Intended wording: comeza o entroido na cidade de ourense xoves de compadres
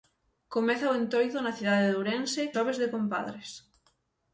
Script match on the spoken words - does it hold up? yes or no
yes